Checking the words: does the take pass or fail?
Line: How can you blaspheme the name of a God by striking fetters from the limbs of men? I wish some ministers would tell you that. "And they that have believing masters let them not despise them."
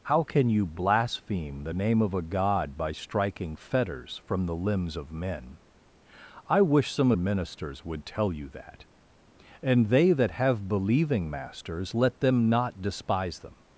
pass